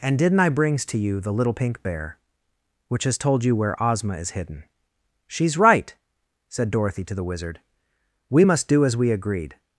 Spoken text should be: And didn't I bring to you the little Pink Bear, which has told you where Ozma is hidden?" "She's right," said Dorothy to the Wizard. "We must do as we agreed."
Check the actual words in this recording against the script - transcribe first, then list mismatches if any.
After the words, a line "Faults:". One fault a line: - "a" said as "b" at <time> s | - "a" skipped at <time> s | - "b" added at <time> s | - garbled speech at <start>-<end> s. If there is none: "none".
And didn't I brings to you the little Pink Bear, which has told you where Ozma is hidden?" "She's right," said Dorothy to the Wizard. "We must do as we agreed."
Faults:
- "bring" said as "brings" at 0.5 s